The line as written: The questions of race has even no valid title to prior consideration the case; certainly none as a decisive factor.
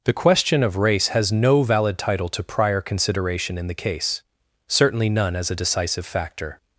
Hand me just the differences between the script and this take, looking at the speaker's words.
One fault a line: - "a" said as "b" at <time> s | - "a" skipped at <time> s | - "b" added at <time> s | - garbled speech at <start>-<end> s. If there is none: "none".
- "questions" said as "question" at 0.1 s
- "even" skipped at 1.3 s
- "in" added at 3.5 s